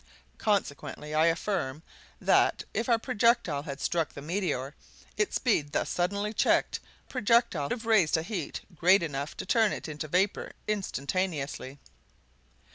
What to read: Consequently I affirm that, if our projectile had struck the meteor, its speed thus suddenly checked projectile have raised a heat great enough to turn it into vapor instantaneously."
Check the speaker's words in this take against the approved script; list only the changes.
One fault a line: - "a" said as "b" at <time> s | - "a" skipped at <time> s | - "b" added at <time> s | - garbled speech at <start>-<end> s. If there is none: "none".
none